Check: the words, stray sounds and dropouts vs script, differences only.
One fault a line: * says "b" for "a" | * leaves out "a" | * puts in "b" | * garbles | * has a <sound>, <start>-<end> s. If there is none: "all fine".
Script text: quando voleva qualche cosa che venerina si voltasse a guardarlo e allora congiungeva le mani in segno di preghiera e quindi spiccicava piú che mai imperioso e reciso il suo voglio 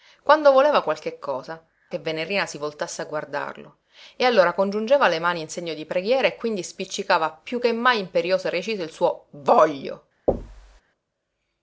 * has a thud, 10.3-10.8 s